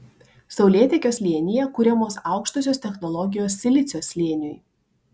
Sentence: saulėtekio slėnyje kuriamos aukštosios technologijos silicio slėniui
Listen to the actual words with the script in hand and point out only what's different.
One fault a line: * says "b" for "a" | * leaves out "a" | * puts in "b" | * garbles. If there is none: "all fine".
all fine